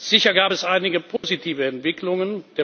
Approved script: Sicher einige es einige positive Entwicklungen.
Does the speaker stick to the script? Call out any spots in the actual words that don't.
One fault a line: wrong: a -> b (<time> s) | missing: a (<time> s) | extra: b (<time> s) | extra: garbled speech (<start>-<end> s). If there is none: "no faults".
wrong: einige -> gab (0.3 s)